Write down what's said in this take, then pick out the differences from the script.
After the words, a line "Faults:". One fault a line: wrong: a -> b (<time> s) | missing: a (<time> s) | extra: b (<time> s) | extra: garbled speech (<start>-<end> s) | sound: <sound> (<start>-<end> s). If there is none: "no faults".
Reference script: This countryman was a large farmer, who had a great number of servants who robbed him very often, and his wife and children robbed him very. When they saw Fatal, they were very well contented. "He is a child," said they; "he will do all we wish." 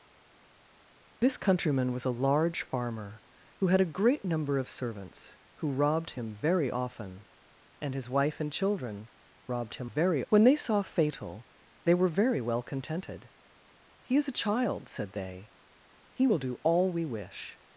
This countryman was a large farmer, who had a great number of servants who robbed him very often, and his wife and children robbed him very. When they saw Fatal, they were very well contented. "He is a child," said they; "he will do all we wish."
Faults:
no faults